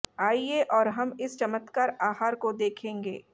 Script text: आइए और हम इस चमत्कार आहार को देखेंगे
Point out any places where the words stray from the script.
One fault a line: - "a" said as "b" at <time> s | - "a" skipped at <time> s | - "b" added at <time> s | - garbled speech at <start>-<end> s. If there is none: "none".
none